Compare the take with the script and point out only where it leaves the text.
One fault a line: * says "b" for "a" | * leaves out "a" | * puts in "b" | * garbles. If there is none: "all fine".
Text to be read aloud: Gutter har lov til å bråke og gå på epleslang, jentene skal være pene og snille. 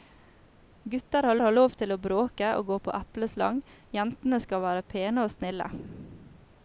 * puts in "har"